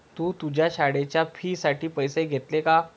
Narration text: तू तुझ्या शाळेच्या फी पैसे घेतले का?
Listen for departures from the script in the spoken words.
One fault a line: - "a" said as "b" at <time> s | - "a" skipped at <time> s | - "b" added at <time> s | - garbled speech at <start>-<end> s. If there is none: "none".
- "साठी" added at 1.6 s